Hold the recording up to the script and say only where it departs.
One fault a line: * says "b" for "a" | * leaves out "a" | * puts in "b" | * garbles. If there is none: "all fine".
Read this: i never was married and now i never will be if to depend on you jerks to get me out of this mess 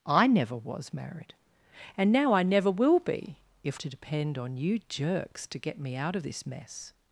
all fine